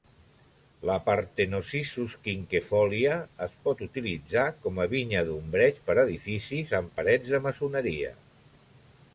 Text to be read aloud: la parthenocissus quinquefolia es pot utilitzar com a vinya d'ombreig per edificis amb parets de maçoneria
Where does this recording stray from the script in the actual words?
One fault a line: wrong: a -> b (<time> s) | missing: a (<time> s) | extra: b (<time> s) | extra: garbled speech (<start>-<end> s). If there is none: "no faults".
no faults